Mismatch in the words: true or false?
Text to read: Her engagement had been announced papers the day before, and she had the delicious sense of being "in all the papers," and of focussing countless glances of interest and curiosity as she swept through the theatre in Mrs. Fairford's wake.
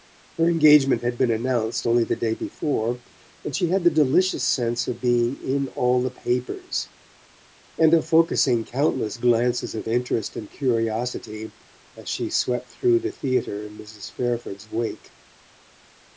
true